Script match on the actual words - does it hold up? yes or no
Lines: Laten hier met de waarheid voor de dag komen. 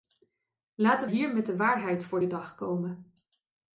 yes